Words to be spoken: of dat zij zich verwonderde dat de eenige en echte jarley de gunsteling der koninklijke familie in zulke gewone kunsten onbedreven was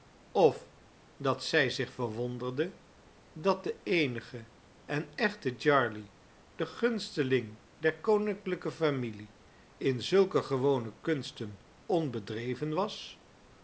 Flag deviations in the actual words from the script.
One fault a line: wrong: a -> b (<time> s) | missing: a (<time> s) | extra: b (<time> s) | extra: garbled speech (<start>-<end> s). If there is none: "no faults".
no faults